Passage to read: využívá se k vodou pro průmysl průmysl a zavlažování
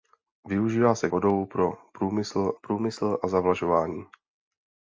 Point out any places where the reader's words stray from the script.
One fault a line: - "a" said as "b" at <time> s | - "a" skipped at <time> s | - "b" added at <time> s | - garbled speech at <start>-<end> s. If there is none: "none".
none